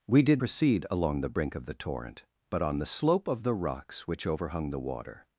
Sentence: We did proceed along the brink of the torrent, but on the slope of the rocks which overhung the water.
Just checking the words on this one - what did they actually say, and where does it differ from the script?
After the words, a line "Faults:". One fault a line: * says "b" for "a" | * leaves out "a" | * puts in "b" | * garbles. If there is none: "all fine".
We did proceed along the brink of the torrent, but on the slope of the rocks which overhung the water.
Faults:
all fine